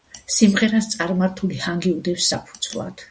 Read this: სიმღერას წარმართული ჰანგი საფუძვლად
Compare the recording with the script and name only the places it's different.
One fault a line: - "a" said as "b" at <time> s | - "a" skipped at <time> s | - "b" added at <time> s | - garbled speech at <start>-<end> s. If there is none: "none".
- "უდევს" added at 2.0 s